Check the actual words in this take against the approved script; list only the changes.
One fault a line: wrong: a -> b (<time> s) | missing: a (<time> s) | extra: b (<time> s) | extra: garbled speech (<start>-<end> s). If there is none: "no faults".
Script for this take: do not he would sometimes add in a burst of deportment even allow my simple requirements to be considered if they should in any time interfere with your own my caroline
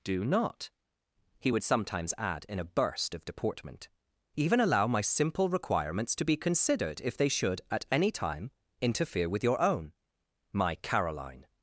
wrong: in -> at (7.7 s)